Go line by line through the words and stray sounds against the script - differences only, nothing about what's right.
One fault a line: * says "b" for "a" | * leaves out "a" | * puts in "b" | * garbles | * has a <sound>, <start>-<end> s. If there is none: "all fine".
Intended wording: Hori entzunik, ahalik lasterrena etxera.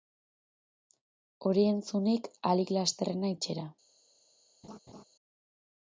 * has a laugh, 4.6-5.0 s